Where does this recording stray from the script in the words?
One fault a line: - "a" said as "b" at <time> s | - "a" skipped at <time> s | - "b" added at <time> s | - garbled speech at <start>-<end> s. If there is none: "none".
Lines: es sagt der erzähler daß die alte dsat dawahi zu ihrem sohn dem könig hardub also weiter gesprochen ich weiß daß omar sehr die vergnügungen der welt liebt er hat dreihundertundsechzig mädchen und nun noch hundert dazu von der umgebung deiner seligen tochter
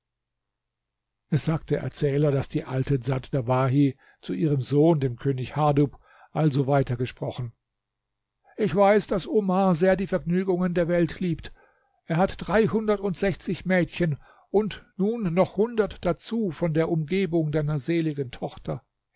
none